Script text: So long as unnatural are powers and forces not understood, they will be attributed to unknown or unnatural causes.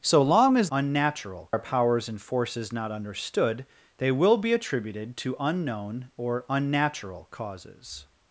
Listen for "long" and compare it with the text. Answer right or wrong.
right